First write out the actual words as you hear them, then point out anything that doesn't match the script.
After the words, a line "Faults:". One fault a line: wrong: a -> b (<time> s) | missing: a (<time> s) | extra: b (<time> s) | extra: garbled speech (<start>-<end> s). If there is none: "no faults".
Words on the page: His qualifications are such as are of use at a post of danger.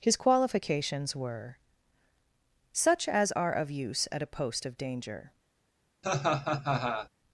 His qualifications were such as are of use at a post of danger.
Faults:
wrong: are -> were (1.1 s)